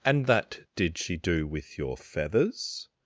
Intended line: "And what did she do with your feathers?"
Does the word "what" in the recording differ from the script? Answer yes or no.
yes